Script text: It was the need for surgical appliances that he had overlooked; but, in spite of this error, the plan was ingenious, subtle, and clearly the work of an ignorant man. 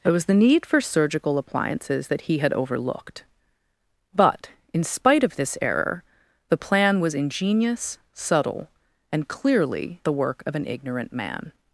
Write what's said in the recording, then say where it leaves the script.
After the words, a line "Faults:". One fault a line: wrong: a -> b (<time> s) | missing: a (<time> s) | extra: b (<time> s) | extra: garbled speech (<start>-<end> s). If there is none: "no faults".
It was the need for surgical appliances that he had overlooked; but, in spite of this error, the plan was ingenious, subtle, and clearly the work of an ignorant man.
Faults:
no faults